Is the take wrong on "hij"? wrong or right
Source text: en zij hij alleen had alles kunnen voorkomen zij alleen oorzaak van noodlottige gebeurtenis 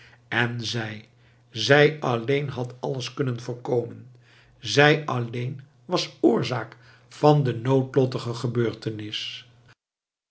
wrong